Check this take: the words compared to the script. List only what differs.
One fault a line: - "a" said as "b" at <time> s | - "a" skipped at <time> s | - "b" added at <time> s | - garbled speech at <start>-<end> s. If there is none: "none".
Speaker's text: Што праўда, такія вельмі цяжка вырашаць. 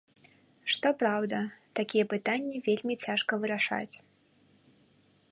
- "пытанні" added at 2.1 s